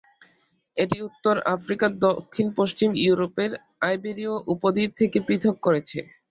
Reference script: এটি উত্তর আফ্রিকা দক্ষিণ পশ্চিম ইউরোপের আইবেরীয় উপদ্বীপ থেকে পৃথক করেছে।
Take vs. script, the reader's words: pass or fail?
pass